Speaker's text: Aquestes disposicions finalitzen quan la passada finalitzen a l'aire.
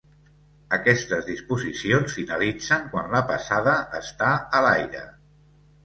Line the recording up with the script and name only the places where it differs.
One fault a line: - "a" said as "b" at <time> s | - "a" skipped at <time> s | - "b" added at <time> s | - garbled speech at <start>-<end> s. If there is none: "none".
- "finalitzen" said as "està" at 4.0 s